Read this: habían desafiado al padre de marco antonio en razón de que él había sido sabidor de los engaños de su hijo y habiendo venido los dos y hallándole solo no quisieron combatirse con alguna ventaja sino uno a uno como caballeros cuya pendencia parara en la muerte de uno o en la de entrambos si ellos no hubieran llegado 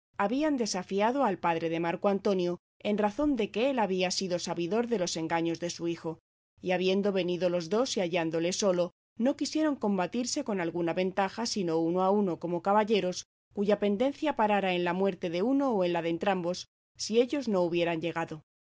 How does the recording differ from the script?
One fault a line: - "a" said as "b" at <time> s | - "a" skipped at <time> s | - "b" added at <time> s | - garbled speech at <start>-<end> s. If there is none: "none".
none